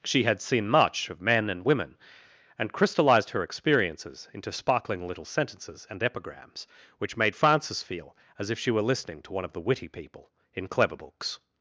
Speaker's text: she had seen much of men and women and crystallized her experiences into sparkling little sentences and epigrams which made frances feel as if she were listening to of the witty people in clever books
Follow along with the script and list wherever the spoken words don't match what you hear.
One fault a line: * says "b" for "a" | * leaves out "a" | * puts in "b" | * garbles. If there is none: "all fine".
* puts in "one"